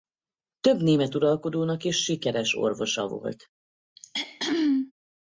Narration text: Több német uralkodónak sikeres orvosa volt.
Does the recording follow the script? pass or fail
fail